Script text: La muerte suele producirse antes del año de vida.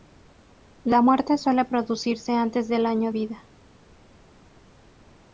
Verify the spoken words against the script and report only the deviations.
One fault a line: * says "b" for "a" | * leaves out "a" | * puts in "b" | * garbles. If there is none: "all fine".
* leaves out "de"